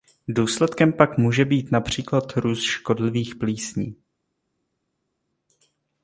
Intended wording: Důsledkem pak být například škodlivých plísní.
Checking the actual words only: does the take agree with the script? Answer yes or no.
no